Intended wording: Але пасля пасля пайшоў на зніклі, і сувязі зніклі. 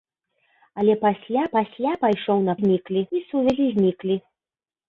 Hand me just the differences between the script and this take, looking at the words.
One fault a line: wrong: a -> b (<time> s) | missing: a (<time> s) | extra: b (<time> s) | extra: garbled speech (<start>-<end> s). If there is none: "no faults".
no faults